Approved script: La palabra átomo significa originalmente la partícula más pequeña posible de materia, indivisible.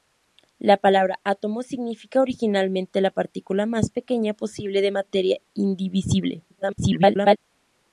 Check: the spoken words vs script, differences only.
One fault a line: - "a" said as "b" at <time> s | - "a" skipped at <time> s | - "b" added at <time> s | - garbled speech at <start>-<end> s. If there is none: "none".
- garbled speech at 6.5-7.4 s